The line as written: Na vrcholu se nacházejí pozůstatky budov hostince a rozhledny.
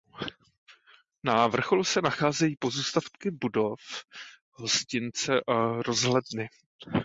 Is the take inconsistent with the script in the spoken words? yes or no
no